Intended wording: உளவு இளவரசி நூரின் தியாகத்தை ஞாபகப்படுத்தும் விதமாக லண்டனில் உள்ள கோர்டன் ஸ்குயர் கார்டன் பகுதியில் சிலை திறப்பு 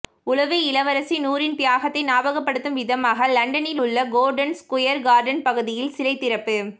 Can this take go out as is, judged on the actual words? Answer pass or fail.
pass